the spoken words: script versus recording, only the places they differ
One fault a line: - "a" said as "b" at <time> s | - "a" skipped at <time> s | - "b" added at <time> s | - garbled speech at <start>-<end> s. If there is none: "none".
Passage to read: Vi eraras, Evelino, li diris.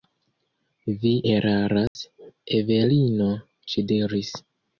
- "li" said as "ŝi" at 3.7 s